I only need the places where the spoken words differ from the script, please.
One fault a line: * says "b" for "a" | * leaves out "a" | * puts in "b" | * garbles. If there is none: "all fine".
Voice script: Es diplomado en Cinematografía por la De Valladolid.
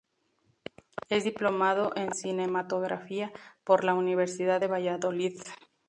* puts in "Universidad"